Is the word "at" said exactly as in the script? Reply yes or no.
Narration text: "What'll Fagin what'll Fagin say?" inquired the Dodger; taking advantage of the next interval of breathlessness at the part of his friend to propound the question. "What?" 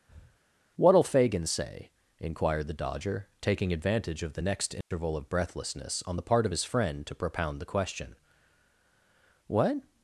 no